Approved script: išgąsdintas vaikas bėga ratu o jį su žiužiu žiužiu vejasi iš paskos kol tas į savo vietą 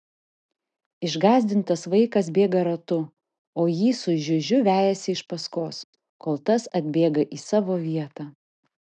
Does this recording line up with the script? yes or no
no